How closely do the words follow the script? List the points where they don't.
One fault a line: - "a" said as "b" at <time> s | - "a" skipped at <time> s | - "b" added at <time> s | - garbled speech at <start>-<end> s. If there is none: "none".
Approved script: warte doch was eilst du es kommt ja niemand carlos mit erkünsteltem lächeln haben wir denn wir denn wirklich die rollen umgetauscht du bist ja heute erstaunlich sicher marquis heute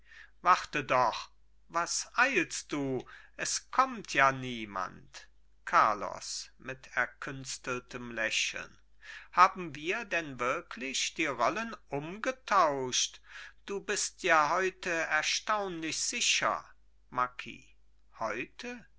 - "wir denn" skipped at 10.4 s